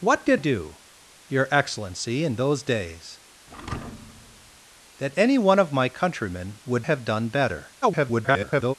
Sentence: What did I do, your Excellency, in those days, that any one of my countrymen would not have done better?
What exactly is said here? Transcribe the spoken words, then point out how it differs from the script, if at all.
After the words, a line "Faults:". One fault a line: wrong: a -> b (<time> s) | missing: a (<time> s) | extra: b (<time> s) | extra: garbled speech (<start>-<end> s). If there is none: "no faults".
What did do, your Excellency, in those days, that any one of my countrymen would have done better? [garbled]
Faults:
missing: I (0.4 s)
missing: not (6.9 s)
extra: garbled speech (7.8-8.7 s)